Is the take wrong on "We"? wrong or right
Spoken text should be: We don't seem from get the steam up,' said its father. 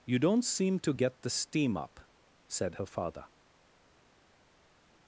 wrong